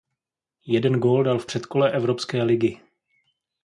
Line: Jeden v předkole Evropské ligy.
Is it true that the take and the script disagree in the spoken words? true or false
true